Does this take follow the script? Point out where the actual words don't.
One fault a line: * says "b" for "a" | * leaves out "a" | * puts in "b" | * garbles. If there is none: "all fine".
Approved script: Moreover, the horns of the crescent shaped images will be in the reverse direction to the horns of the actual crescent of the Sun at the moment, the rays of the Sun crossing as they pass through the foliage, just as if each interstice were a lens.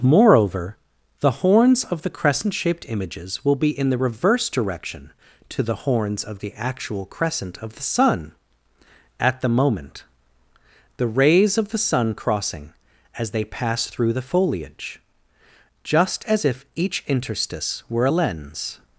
all fine